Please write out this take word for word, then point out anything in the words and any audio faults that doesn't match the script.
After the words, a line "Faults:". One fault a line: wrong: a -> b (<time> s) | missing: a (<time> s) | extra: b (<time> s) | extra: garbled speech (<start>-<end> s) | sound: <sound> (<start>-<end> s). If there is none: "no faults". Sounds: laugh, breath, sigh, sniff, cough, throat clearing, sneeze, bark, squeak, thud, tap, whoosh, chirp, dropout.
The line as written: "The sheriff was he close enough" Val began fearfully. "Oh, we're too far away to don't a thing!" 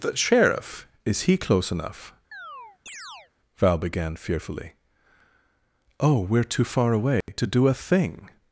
"The sheriff is he close enough" Val began fearfully. "Oh, we're too far away to do a thing!"
Faults:
wrong: was -> is (1.1 s)
sound: chirp (2.3-3.3 s)
sound: dropout (7.2-7.3 s)
wrong: don't -> do (7.5 s)